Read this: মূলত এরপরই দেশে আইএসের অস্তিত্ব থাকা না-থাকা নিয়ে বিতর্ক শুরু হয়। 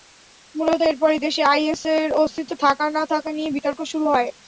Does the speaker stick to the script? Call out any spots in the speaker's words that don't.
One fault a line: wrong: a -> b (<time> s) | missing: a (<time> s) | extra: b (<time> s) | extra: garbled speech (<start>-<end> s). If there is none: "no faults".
no faults